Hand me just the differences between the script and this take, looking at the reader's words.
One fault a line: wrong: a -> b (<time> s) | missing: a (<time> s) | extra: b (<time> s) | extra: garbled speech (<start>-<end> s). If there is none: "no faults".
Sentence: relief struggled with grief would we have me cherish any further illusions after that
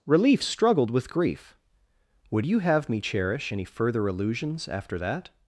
wrong: we -> you (2.4 s)